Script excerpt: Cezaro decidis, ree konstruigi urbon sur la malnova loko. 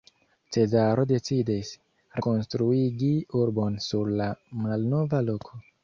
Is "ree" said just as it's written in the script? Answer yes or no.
no